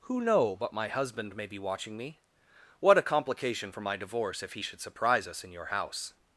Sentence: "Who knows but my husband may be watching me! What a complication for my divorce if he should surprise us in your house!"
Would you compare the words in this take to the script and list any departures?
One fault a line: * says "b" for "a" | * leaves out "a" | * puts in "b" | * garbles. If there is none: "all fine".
* says "know" for "knows"